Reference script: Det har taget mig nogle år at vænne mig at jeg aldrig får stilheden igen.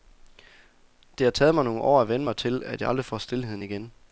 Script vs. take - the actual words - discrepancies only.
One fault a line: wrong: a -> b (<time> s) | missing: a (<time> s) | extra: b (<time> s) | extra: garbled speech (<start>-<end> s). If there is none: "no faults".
extra: til (2.4 s)